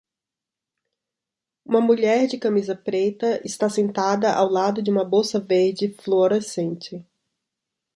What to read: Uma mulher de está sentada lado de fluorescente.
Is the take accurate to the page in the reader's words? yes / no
no